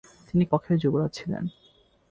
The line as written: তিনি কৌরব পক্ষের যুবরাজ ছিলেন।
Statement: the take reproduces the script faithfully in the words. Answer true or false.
false